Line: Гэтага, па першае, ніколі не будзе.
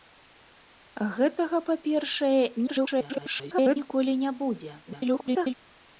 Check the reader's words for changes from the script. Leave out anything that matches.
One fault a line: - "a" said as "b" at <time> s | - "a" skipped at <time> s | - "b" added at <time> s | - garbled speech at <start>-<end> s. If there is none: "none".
- garbled speech at 2.7-3.8 s
- garbled speech at 4.9-5.5 s